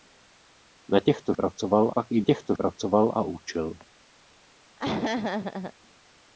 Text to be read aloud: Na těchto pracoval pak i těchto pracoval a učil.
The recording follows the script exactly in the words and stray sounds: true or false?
false